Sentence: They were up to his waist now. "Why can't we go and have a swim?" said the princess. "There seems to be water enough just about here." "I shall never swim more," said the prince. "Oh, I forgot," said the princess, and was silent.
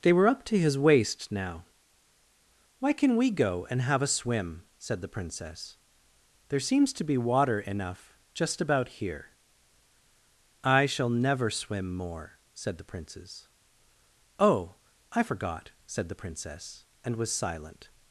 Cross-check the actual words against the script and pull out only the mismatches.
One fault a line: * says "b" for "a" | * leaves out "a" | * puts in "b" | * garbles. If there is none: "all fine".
* says "can" for "can't"
* says "princes" for "prince"